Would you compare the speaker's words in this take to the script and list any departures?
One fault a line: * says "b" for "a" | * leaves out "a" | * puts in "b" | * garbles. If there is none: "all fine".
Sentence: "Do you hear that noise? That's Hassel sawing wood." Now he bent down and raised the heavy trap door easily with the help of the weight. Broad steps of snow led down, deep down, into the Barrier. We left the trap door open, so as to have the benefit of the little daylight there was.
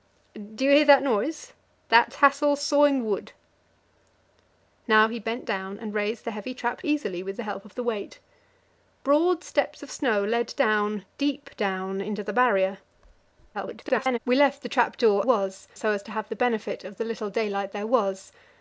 * leaves out "door"
* garbles
* says "was" for "open"